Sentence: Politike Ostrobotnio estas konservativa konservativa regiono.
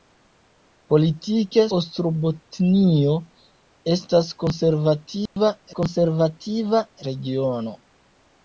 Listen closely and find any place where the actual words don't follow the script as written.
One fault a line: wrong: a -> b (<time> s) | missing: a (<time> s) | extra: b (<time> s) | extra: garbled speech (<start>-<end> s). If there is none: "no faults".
no faults